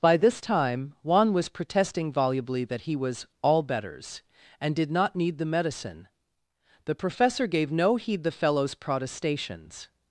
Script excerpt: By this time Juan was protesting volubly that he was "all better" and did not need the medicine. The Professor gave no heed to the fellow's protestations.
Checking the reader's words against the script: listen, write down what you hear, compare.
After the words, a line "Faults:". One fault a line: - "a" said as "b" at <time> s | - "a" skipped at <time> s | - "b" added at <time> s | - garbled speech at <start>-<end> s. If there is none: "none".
By this time Juan was protesting volubly that he was "all betters" and did not need the medicine. The Professor gave no heed the fellow's protestations.
Faults:
- "better" said as "betters" at 3.6 s
- "to" skipped at 8.2 s